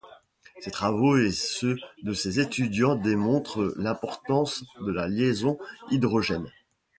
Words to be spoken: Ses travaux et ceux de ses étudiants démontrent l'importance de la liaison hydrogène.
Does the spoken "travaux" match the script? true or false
true